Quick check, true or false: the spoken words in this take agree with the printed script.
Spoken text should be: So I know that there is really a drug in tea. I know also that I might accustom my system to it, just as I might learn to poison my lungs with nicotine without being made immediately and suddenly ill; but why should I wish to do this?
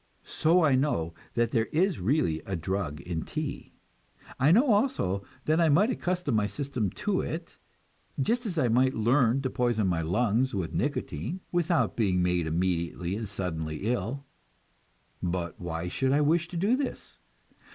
true